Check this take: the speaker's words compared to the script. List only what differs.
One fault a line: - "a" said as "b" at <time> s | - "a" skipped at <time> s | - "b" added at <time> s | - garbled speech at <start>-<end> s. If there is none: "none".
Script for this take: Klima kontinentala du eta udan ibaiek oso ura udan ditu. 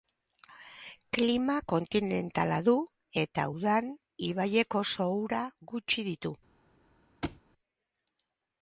- "udan" said as "gutxi" at 5.7 s